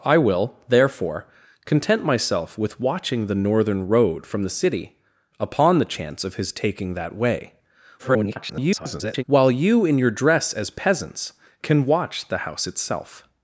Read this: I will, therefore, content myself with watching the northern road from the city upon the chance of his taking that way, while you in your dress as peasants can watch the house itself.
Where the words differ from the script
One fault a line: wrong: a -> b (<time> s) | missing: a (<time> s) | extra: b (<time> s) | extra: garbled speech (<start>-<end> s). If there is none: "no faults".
extra: garbled speech (8.0-9.2 s)